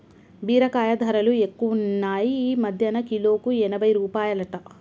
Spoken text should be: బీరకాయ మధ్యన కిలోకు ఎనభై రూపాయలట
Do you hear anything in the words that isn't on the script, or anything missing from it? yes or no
yes